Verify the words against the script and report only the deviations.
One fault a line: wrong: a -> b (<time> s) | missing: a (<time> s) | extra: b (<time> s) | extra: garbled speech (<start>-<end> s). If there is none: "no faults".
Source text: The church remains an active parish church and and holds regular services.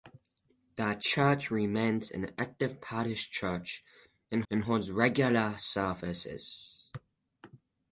no faults